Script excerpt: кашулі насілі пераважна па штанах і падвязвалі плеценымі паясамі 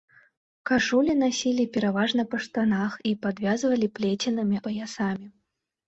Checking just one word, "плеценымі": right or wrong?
right